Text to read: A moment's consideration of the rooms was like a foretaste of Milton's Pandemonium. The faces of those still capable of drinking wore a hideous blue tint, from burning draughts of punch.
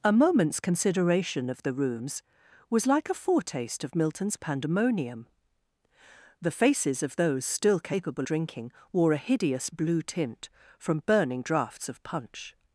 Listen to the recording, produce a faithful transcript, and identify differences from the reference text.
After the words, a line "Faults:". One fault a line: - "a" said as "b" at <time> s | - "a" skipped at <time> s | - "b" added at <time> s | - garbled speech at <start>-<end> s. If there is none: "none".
A moment's consideration of the rooms was like a foretaste of Milton's Pandemonium. The faces of those still capable drinking wore a hideous blue tint, from burning draughts of punch.
Faults:
- "of" skipped at 8.3 s